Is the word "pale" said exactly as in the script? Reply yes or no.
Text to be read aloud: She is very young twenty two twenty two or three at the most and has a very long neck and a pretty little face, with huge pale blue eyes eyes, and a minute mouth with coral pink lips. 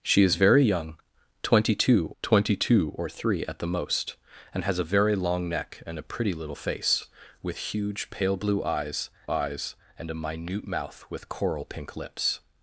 yes